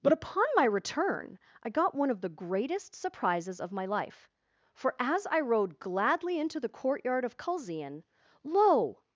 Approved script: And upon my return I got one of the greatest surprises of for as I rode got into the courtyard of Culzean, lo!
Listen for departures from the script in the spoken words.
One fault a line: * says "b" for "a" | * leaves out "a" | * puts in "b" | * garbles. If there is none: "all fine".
* says "But" for "And"
* puts in "my life"
* says "gladly" for "got"